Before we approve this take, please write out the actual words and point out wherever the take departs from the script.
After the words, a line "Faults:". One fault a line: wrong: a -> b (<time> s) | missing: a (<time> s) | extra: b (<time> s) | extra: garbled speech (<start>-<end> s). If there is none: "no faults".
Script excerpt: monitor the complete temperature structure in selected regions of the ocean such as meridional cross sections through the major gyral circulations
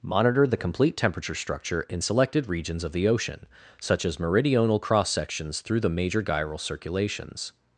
monitor the complete temperature structure in selected regions of the ocean such as meridional cross sections through the major gyral circulations
Faults:
no faults